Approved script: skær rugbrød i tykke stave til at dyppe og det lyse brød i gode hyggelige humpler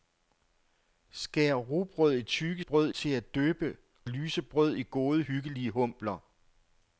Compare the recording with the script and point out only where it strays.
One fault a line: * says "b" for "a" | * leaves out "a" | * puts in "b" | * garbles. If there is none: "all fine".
* says "brød" for "stave"
* leaves out "og det"